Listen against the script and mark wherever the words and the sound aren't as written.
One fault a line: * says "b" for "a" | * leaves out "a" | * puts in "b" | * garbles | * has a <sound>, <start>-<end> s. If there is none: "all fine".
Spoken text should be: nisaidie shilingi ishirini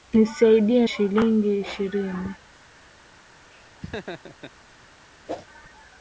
* has a laugh, 3.5-4.5 s
* has a whoosh, 5.3-5.5 s